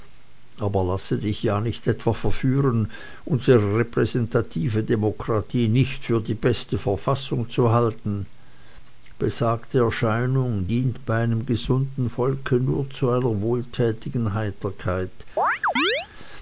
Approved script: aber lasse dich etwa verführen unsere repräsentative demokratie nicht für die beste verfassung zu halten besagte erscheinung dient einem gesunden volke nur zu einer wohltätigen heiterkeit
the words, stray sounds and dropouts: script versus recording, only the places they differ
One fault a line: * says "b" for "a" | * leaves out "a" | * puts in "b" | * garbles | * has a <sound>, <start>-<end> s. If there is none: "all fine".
* puts in "ja nicht"
* puts in "bei"
* has a chirp, 15.4-16.1 s